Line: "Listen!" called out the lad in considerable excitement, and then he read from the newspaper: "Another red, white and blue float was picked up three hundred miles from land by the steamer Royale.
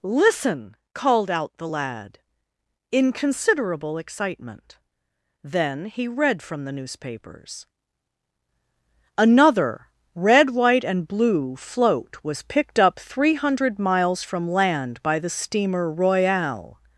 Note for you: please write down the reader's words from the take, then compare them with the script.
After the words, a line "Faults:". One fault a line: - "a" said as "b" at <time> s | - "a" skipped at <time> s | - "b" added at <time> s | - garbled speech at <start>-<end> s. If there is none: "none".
"Listen!" called out the lad in considerable excitement, then he read from the newspapers: "Another red, white and blue float was picked up three hundred miles from land by the steamer Royale.
Faults:
- "and" skipped at 4.8 s
- "newspaper" said as "newspapers" at 6.7 s